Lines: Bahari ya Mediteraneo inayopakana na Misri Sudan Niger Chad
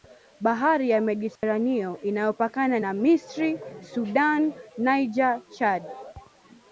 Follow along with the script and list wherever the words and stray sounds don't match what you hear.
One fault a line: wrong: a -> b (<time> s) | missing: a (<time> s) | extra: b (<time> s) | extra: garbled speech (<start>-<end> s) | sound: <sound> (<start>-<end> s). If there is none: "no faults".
sound: dropout (1.4-1.4 s)